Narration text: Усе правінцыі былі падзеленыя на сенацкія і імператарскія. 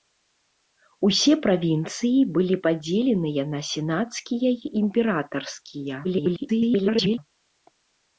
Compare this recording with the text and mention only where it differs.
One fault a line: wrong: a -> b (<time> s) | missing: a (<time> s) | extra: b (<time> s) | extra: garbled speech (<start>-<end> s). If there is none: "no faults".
extra: garbled speech (6.0-7.2 s)